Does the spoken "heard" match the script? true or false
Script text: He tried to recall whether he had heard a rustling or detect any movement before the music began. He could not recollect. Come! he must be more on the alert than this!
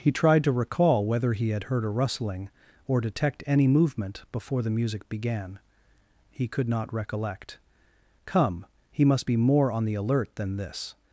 true